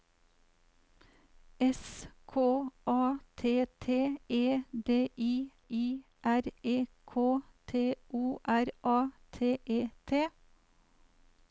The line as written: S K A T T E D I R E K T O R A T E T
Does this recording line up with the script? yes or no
no